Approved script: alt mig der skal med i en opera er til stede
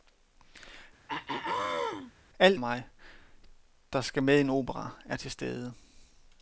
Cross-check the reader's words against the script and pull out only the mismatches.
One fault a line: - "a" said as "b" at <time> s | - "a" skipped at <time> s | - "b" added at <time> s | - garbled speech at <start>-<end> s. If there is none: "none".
none